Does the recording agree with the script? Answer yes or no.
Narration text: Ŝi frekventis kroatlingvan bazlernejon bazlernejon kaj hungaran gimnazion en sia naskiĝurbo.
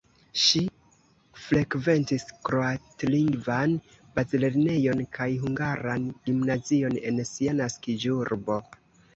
no